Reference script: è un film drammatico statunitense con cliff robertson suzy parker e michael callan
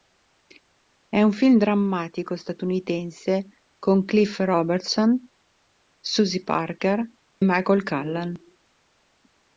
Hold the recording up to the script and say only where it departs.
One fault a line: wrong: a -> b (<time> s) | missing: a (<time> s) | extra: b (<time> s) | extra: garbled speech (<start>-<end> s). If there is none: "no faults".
missing: e (7.0 s)